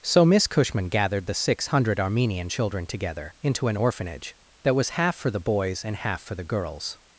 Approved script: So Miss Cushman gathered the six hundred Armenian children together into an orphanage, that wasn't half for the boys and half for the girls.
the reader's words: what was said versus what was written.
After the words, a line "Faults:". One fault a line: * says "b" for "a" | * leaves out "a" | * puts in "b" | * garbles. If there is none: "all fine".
So Miss Cushman gathered the six hundred Armenian children together into an orphanage, that was half for the boys and half for the girls.
Faults:
* says "was" for "wasn't"